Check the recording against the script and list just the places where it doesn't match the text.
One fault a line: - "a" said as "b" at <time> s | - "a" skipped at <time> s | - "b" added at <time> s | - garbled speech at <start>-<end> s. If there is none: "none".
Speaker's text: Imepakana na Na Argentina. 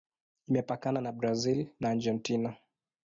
- "Brazil" added at 1.1 s